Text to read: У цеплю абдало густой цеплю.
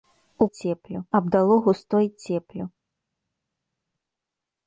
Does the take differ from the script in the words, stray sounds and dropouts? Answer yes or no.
no